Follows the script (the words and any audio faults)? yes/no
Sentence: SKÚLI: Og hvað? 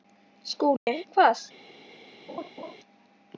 no